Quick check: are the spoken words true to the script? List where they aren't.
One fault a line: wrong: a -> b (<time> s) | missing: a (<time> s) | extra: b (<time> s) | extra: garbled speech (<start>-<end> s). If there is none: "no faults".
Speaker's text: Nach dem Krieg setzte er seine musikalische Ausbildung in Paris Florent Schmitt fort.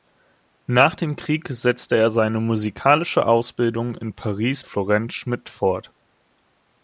no faults